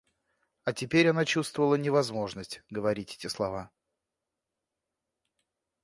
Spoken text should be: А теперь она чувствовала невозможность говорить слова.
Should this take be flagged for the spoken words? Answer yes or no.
yes